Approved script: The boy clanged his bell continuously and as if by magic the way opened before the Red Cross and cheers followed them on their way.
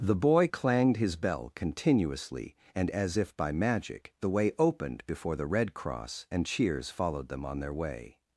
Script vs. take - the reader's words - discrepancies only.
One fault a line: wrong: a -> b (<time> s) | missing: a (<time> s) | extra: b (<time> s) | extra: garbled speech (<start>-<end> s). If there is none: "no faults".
no faults